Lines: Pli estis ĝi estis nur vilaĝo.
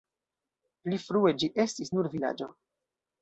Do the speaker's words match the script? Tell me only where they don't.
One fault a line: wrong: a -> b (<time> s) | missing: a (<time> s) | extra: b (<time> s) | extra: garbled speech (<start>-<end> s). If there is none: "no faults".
wrong: estis -> frue (1.0 s)